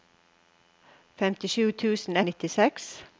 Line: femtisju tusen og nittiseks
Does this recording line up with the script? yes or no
yes